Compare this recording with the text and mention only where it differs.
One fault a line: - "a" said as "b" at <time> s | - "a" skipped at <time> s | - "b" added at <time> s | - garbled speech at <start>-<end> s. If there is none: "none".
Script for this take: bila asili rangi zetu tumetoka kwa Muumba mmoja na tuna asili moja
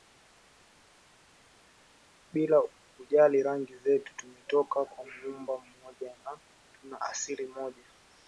- "asili" said as "kujali" at 3.0 s